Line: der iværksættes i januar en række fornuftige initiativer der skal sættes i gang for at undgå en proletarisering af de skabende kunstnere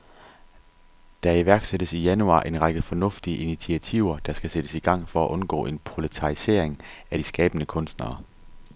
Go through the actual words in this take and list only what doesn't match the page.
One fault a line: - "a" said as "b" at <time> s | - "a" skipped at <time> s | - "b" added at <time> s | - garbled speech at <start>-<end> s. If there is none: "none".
none